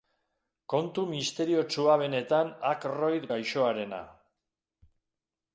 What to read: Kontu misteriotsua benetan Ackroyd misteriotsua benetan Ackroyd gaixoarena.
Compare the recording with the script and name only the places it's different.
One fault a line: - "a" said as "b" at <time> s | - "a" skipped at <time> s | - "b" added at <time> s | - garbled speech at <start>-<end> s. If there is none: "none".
- "misteriotsua benetan Ackroyd" skipped at 3.3 s